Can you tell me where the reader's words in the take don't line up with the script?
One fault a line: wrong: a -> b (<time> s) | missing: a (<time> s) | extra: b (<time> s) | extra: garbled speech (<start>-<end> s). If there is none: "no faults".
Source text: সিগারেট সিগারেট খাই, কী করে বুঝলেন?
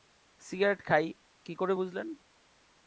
missing: সিগারেট (0.8 s)